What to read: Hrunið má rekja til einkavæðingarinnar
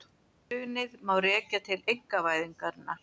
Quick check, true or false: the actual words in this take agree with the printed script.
true